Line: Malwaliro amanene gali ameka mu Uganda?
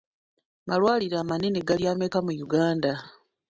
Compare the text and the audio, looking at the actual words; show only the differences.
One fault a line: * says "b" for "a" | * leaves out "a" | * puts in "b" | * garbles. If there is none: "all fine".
all fine